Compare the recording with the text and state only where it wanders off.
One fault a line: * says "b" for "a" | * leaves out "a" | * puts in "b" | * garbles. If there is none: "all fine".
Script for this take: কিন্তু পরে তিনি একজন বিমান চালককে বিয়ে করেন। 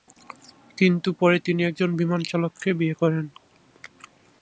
all fine